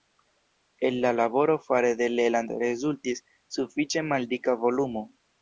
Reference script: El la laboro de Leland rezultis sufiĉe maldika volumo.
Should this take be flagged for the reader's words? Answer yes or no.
yes